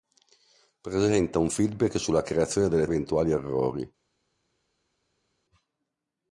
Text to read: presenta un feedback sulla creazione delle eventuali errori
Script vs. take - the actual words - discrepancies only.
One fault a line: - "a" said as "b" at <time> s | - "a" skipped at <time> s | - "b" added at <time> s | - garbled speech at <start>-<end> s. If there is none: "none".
none